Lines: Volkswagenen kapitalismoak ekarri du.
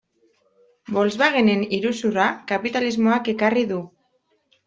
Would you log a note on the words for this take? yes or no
yes